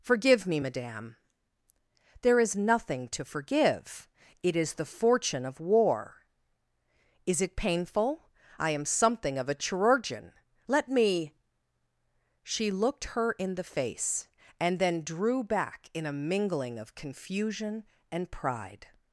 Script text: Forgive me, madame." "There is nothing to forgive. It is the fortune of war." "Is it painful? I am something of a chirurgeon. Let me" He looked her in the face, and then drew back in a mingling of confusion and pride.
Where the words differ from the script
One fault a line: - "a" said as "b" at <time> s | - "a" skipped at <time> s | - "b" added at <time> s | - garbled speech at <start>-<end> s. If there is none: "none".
- "He" said as "She" at 12.4 s